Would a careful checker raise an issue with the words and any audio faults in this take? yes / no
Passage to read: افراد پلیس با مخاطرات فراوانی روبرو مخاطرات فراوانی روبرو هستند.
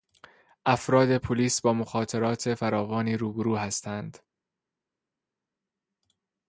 yes